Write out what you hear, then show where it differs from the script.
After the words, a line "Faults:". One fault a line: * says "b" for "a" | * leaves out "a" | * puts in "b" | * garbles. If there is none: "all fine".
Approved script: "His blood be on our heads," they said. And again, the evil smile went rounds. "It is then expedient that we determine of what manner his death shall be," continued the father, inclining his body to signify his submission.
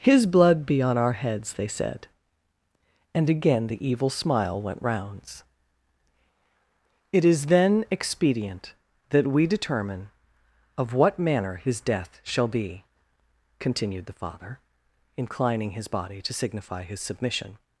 "His blood be on our heads," they said. And again, the evil smile went rounds. "It is then expedient that we determine of what manner his death shall be," continued the father, inclining his body to signify his submission.
Faults:
all fine